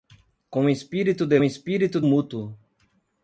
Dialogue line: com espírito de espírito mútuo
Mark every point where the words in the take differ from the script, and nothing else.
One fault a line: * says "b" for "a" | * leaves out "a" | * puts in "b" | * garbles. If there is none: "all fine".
all fine